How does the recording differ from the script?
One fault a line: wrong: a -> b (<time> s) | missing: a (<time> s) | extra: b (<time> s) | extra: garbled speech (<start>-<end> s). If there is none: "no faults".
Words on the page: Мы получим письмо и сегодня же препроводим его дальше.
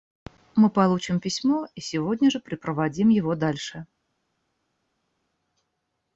no faults